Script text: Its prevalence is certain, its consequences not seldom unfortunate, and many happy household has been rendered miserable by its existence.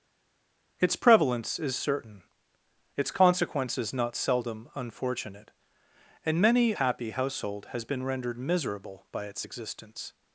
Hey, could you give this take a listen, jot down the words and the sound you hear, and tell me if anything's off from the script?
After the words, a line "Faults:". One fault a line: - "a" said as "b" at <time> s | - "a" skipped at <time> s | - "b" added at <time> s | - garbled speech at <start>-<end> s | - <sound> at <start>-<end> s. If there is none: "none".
Its prevalence is certain, its consequences not seldom unfortunate, and many happy household has been rendered miserable by its existence.
Faults:
none